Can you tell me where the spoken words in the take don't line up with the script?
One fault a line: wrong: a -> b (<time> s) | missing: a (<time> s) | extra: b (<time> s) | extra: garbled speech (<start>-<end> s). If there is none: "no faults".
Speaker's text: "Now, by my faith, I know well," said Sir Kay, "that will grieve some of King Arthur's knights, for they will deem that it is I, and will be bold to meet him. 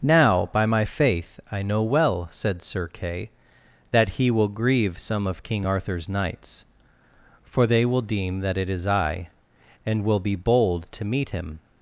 extra: he (4.2 s)